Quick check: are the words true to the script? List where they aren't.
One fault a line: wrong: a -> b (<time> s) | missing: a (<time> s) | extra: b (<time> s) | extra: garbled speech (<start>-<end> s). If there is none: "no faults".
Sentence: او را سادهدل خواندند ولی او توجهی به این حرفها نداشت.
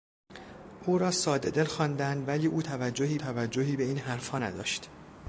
extra: توجهی (3.2 s)